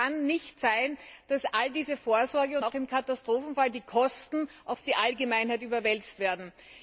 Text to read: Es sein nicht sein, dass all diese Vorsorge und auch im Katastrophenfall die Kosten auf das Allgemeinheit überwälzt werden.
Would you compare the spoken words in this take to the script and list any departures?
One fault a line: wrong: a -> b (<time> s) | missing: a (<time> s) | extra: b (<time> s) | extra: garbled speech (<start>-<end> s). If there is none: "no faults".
wrong: sein -> kann (0.1 s)
wrong: das -> die (4.8 s)